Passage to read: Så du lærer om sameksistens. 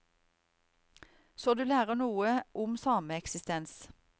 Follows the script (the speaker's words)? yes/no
no